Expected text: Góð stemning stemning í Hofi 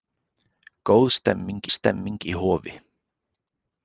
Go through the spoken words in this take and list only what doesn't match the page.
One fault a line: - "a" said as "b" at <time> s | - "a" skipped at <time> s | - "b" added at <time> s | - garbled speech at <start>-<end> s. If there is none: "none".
none